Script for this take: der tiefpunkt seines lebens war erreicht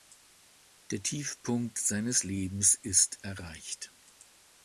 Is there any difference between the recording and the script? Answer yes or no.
yes